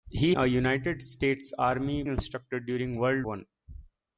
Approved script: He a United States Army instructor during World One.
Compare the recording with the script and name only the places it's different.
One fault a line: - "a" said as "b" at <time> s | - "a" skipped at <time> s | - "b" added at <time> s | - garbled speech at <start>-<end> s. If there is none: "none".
none